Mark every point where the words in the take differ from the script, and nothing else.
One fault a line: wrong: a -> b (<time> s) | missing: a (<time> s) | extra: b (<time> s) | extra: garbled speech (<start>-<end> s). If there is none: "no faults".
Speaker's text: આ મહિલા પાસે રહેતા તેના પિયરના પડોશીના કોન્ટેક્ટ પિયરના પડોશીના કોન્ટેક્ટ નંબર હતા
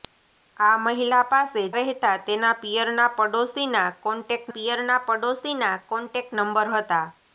no faults